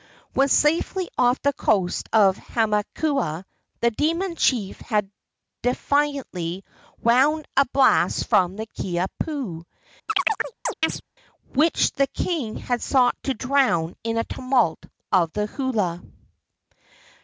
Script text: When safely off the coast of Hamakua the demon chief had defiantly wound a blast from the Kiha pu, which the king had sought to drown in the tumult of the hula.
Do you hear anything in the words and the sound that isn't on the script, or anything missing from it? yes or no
yes